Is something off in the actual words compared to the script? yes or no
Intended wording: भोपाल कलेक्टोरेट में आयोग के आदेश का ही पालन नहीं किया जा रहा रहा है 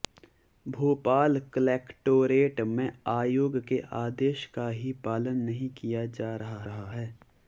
no